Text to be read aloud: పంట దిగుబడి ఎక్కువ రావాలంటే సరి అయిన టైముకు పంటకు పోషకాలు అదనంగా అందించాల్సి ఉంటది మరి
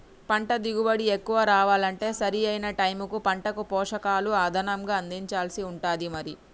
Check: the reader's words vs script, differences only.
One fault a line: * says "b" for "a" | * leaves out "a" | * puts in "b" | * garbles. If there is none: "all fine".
all fine